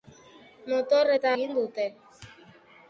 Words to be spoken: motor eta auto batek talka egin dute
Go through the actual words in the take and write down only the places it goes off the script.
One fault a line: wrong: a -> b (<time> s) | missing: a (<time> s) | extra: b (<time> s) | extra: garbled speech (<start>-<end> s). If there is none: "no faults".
missing: auto batek talka (1.3 s)